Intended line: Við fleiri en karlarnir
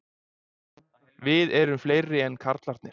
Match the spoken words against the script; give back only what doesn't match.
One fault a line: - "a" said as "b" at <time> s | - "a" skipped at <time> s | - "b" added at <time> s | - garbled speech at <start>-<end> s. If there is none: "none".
- "erum" added at 1.6 s